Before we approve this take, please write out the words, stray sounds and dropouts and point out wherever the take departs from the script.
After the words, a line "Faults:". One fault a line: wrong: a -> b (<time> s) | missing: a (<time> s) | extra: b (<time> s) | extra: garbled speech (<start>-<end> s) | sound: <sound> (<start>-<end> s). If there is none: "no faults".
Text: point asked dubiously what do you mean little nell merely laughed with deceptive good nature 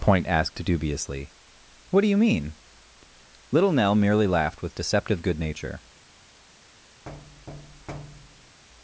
point asked dubiously what do you mean little nell merely laughed with deceptive good nature
Faults:
sound: thud (7.1-8.6 s)